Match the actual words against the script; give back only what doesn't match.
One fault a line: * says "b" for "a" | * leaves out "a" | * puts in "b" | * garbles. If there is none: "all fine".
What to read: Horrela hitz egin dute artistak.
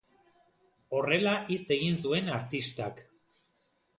* says "zuen" for "dute"